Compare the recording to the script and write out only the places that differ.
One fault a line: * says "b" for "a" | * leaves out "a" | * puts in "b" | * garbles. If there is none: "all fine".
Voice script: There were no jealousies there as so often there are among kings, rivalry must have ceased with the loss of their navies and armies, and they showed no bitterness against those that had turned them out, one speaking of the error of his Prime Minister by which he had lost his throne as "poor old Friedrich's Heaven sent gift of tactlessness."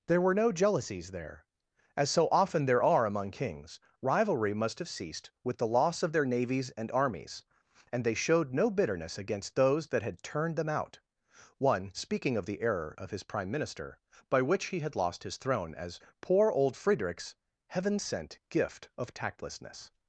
all fine